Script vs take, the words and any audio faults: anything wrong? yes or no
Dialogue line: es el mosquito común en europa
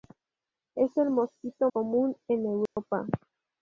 yes